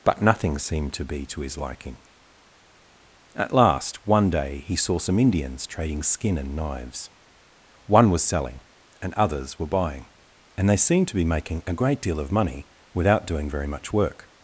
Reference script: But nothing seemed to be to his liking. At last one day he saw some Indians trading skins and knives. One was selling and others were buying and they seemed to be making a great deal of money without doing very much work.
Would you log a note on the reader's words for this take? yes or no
yes